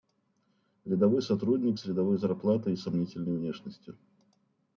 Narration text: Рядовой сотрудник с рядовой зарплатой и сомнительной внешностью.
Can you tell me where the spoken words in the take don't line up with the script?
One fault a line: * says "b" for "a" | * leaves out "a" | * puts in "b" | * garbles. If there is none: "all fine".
all fine